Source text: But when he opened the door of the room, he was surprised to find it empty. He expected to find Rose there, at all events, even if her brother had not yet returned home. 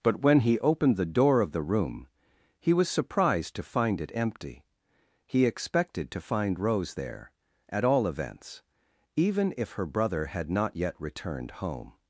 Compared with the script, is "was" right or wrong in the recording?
right